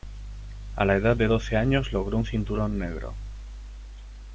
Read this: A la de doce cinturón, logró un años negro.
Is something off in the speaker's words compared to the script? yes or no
yes